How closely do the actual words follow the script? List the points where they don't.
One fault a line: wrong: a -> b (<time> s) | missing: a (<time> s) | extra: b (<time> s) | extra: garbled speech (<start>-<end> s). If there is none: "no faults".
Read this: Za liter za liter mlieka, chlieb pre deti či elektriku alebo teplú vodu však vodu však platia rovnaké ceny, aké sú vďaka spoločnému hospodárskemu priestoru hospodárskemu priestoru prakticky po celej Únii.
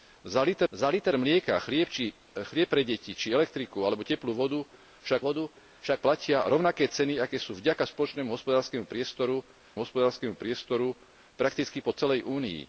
no faults